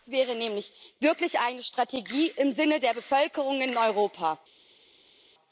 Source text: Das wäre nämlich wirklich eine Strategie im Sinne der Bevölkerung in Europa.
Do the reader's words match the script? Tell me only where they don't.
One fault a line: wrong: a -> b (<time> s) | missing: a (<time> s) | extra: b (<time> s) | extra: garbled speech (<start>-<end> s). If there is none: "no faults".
no faults